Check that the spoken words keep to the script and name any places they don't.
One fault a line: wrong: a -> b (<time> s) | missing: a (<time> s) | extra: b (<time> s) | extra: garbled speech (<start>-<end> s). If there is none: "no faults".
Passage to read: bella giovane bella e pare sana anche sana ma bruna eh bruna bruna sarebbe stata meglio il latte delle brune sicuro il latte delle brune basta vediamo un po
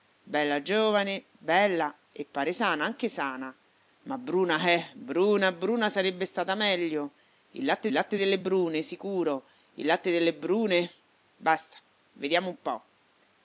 extra: latte (7.9 s)